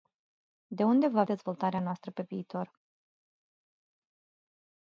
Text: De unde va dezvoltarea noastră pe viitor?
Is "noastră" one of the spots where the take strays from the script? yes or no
no